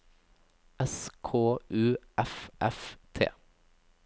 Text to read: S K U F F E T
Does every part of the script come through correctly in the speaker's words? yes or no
no